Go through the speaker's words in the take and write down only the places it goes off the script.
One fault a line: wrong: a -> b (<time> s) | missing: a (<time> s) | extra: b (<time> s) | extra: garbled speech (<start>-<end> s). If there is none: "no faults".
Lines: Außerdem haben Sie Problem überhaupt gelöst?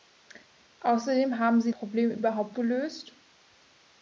no faults